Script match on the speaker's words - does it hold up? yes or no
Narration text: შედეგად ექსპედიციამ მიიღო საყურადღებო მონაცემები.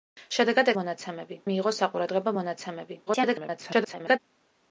no